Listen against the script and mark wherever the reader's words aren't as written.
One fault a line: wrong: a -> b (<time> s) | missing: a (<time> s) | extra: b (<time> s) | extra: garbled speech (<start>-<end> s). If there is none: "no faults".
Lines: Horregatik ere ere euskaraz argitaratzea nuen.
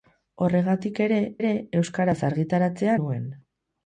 no faults